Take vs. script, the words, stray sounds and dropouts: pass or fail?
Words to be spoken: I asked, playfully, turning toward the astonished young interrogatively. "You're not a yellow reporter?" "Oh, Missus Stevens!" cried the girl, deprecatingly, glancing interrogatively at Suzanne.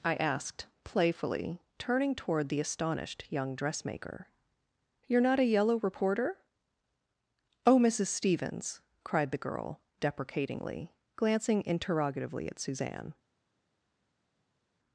fail